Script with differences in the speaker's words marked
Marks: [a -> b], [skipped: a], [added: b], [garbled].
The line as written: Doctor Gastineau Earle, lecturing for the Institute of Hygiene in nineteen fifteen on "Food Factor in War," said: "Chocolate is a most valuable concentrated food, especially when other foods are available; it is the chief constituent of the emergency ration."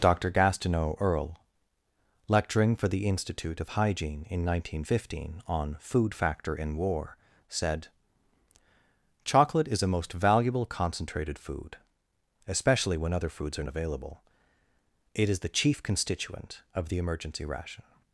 Doctor Gastineau Earle, lecturing for the Institute of Hygiene in nineteen fifteen on "Food Factor in War," said: "Chocolate is a most valuable concentrated food, especially when other foods are available; it is the chief constituent of the emergency ration."